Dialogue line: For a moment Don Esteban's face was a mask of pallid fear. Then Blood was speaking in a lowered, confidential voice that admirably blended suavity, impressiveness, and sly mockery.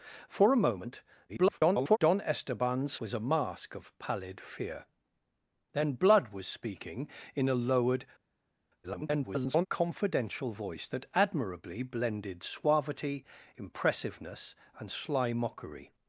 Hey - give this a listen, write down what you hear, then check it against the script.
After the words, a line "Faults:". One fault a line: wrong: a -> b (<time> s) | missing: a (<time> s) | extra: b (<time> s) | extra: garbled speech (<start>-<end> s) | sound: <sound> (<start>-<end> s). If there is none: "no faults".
For a moment [garbled] Don Esteban's was a mask of pallid fear. Then Blood was speaking in a lowered, [garbled] confidential voice that admirably blended suavity, impressiveness, and sly mockery.
Faults:
extra: garbled speech (1.3-2.0 s)
missing: face (3.0 s)
extra: garbled speech (8.8-9.7 s)